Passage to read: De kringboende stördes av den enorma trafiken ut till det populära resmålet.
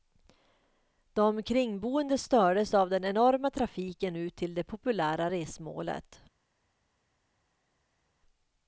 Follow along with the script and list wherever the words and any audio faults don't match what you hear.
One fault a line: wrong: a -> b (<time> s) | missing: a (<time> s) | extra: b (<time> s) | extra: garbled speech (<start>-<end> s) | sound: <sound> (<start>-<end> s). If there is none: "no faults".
no faults